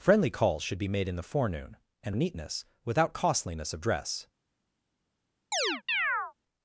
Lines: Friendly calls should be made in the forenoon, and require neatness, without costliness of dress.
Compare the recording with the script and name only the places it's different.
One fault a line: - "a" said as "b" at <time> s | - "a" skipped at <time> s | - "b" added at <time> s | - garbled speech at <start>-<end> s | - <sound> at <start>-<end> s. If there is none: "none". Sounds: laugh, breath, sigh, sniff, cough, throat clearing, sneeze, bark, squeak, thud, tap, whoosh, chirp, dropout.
- "require" skipped at 2.1 s
- chirp at 5.5-6.3 s